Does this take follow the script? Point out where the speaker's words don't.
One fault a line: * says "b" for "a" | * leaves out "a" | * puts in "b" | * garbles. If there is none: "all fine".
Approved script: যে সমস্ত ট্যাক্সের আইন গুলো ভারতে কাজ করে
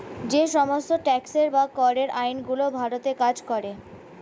* puts in "বা করের"